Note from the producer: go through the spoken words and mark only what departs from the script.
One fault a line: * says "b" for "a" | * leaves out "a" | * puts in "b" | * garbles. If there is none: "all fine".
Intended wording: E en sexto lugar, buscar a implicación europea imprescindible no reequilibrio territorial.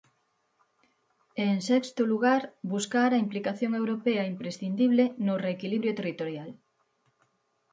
all fine